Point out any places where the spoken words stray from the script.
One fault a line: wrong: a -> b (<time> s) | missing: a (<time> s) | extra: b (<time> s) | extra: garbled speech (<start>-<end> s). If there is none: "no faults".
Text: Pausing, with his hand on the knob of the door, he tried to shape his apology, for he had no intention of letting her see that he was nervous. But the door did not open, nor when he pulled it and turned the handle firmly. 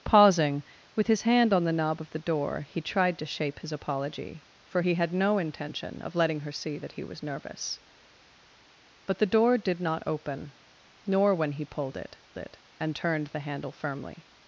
extra: it (12.4 s)